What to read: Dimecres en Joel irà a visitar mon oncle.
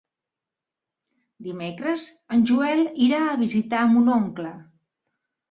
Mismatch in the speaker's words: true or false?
false